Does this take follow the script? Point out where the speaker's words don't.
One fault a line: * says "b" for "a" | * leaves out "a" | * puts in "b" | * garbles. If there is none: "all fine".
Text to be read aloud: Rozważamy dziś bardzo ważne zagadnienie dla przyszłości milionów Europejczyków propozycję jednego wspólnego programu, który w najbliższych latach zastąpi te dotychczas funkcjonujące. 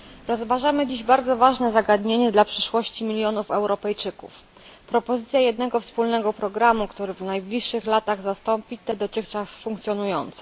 all fine